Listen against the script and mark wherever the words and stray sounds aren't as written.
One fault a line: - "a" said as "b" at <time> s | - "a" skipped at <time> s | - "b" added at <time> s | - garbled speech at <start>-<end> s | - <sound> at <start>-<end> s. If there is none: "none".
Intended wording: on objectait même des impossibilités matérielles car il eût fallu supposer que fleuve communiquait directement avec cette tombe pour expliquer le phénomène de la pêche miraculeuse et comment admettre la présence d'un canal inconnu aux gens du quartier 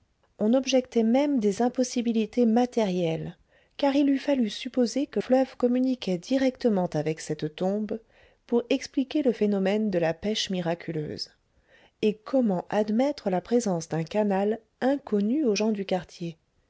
none